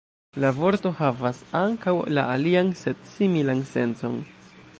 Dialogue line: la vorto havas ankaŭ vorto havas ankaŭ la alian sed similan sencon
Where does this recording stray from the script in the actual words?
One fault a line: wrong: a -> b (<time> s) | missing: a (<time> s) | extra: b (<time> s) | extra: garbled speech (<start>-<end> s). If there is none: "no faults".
missing: vorto havas ankaŭ (1.9 s)